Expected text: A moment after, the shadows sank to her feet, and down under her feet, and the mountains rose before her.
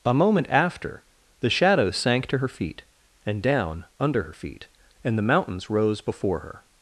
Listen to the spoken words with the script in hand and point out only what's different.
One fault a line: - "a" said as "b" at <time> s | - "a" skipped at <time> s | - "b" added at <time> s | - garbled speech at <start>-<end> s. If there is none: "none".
none